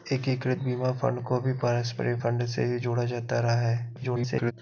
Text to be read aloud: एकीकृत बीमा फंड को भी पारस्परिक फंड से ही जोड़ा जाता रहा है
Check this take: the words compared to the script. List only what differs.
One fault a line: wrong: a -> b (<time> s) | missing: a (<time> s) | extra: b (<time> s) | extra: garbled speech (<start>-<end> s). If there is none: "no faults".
extra: garbled speech (4.0-4.5 s)